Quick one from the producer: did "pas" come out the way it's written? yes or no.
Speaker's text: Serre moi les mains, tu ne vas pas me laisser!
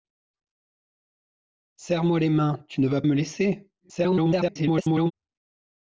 no